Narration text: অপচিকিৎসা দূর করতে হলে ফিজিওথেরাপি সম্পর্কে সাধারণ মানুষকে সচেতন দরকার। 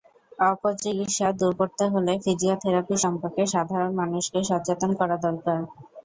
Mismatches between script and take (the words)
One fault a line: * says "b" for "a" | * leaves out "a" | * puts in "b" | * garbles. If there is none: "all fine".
* puts in "করা"